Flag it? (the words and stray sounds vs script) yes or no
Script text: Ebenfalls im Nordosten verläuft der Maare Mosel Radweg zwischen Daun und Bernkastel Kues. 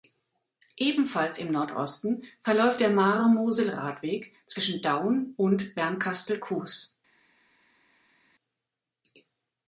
no